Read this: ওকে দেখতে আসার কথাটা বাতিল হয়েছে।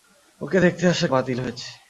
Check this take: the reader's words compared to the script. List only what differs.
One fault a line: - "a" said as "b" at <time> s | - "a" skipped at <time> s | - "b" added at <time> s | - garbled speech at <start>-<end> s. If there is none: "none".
- "কথাটা" skipped at 1.1 s